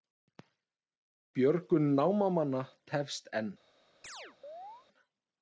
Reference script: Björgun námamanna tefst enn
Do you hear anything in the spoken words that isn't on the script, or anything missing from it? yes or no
no